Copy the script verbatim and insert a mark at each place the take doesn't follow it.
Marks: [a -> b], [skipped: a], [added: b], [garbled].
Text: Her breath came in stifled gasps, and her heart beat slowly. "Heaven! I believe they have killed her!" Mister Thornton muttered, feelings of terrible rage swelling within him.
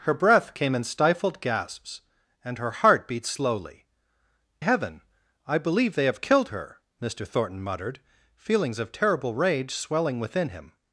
Her breath came in stifled gasps, and her heart beat slowly. "Heaven! I believe they have killed her!" Mister Thornton muttered, feelings of terrible rage swelling within him.